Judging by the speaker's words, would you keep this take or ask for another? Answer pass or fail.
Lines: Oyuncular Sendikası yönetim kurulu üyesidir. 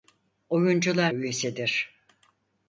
fail